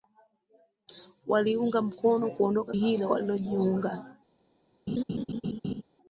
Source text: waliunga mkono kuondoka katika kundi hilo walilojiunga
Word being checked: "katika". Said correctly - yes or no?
no